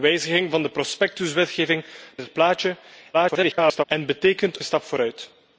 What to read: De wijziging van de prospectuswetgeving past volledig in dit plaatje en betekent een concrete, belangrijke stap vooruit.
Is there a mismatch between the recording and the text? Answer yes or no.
yes